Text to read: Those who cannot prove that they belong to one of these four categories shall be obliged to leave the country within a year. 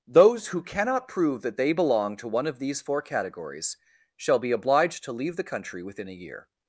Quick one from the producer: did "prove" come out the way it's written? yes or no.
yes